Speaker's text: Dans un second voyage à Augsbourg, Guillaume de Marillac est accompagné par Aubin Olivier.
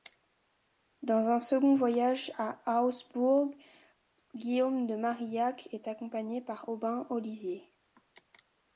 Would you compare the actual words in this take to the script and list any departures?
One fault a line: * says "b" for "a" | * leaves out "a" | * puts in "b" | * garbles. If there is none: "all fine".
all fine